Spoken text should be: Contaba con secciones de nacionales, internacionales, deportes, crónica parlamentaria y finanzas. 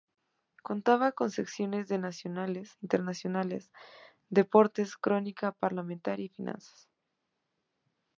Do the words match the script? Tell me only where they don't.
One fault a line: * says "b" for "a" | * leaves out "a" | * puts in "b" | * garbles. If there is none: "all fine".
all fine